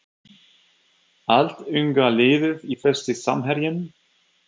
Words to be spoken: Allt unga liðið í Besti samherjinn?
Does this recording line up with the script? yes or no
yes